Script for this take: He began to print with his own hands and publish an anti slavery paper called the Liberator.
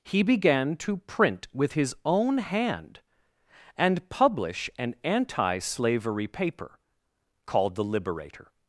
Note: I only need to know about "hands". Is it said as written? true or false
false